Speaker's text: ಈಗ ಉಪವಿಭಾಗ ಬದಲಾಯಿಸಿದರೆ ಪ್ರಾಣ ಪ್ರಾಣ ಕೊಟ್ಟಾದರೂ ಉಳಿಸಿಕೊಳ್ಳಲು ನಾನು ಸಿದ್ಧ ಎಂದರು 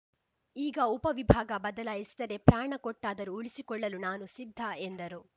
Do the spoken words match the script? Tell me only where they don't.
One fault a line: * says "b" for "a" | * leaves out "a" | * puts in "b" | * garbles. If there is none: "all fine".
* leaves out "ಪ್ರಾಣ"